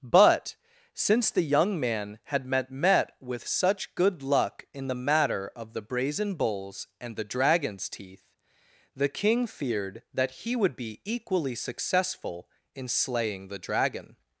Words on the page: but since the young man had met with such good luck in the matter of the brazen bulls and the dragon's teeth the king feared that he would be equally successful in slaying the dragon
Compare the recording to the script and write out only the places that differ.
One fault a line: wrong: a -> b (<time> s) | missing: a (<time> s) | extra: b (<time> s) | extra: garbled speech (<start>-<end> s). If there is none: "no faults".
extra: met (2.7 s)